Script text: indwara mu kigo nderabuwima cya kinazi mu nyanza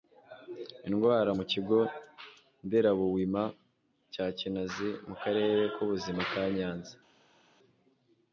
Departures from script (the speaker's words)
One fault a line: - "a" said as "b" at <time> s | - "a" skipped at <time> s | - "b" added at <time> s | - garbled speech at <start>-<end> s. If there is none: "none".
- "karere k'ubuzima ka" added at 5.2 s